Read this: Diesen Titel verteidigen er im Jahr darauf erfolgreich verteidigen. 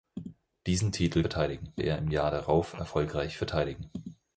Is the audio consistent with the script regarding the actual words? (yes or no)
yes